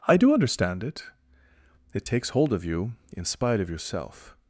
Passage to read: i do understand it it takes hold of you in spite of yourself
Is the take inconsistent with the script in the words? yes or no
no